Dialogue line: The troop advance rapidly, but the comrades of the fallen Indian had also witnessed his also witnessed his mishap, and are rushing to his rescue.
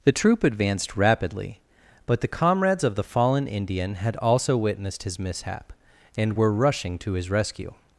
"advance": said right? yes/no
no